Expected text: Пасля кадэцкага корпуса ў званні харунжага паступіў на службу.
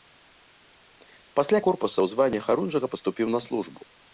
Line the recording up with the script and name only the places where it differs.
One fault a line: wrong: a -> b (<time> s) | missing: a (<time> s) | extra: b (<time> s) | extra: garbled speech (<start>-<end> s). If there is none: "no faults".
missing: кадэцкага (1.6 s)